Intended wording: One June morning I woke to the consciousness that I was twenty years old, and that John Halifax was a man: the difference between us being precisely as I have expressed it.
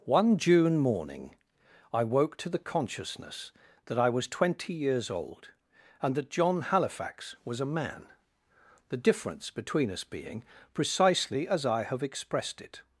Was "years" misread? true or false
false